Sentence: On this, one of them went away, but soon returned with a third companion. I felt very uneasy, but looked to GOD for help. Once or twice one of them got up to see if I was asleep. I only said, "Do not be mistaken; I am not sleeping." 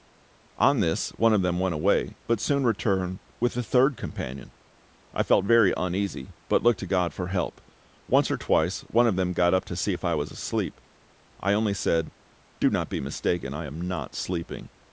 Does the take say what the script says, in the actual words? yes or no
yes